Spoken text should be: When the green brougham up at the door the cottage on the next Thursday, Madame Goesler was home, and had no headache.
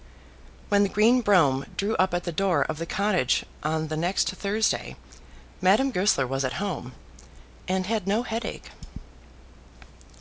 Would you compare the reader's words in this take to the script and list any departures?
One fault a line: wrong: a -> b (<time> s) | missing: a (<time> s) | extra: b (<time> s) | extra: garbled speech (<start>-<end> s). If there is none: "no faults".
extra: drew (1.8 s)
extra: of (2.7 s)
extra: at (6.5 s)